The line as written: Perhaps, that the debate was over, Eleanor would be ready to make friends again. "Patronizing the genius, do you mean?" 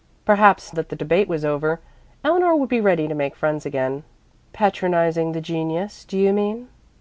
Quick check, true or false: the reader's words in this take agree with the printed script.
true